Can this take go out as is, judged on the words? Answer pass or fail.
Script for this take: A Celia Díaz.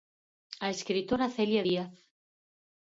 fail